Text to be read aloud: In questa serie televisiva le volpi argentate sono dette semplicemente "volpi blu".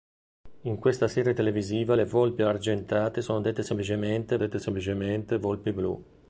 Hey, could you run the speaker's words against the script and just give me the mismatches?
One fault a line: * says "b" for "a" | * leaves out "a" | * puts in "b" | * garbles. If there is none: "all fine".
* puts in "dette semplicemente"